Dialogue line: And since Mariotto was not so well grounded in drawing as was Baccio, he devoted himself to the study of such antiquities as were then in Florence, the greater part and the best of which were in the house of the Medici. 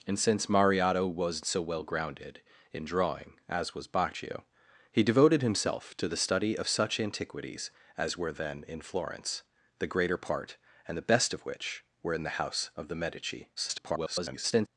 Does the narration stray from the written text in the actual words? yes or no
yes